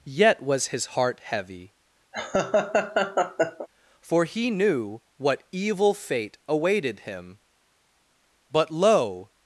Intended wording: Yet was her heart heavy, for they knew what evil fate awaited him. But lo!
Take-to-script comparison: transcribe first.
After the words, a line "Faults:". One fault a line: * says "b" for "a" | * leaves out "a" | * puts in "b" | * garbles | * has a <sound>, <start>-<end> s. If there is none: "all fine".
Yet was his heart heavy, for he knew what evil fate awaited him. But lo!
Faults:
* says "his" for "her"
* has a laugh, 2.1-3.7 s
* says "he" for "they"